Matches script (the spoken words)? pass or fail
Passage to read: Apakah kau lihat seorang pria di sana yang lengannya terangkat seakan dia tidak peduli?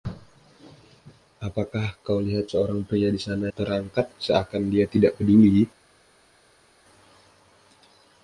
fail